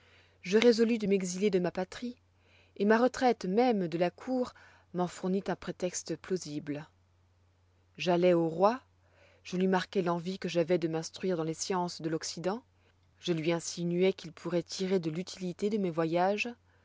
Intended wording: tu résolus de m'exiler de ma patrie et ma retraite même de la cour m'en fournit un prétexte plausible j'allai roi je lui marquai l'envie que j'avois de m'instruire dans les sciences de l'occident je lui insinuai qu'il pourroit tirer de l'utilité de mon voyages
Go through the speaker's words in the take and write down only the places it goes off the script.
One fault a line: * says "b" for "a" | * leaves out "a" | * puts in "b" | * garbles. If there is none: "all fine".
* says "je" for "tu"
* puts in "au"
* says "mes" for "mon"